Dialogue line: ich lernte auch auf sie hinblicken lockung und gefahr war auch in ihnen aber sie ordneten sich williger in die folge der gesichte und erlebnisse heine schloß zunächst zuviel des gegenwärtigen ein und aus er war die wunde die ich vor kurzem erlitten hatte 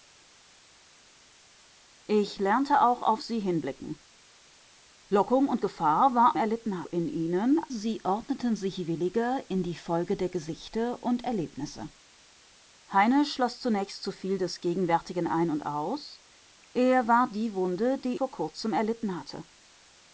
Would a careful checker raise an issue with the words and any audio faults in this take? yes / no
yes